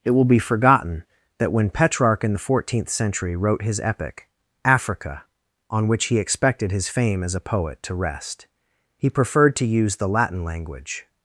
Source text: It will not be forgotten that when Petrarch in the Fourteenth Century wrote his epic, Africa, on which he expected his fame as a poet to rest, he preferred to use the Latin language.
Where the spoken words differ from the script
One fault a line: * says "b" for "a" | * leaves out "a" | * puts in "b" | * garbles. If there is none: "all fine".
* leaves out "not"